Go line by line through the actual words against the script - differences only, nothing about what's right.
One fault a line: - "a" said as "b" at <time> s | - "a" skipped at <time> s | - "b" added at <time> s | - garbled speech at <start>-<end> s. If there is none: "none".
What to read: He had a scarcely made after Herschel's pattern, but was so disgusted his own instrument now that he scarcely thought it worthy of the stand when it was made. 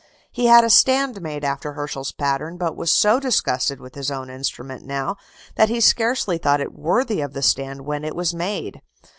- "scarcely" said as "stand" at 0.7 s
- "with" added at 3.8 s